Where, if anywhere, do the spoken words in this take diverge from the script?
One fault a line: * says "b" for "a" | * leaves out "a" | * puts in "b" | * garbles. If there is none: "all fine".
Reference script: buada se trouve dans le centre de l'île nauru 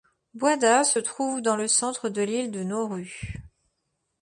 * puts in "de"